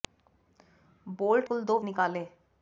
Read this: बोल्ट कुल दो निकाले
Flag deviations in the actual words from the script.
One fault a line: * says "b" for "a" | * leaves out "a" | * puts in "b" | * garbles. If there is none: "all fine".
all fine